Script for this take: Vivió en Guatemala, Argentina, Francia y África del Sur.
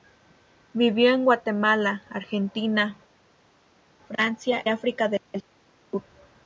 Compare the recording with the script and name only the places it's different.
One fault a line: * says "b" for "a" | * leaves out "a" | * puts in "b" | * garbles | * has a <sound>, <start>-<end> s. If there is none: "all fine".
* leaves out "y"